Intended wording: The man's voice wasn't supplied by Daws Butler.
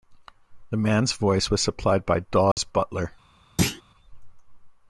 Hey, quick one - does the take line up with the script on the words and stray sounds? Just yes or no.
no